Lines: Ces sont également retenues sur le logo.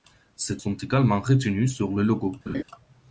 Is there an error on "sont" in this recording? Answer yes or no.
no